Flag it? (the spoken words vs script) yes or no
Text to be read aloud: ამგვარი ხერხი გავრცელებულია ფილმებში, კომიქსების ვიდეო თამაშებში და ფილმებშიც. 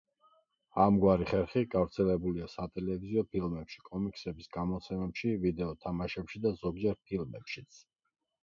yes